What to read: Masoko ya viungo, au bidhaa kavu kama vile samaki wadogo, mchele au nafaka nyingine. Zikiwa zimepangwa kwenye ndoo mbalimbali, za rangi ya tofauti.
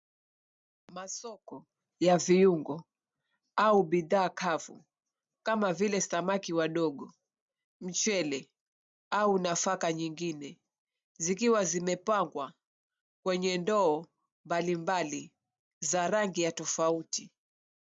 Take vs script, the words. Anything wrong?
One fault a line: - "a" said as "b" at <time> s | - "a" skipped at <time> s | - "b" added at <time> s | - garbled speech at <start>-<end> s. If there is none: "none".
none